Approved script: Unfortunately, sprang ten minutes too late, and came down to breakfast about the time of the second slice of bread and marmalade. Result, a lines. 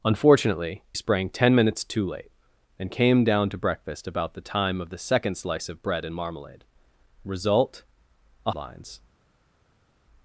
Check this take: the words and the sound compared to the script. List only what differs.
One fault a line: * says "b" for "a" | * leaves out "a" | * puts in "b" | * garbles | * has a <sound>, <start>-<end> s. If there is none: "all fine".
all fine